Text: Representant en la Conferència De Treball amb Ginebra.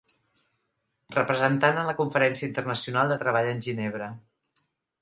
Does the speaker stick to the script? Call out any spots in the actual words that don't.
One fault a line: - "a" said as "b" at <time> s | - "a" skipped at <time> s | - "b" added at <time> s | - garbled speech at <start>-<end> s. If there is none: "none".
- "Internacional" added at 2.5 s
- "amb" said as "en" at 3.6 s